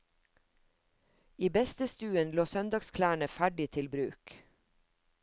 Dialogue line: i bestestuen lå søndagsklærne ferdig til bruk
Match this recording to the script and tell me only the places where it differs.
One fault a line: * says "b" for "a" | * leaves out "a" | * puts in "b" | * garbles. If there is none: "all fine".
all fine